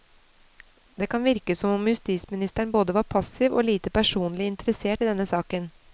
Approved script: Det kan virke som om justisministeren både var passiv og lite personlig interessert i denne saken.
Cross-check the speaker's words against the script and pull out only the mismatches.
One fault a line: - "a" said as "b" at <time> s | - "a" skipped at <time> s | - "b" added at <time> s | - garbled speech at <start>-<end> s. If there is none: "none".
none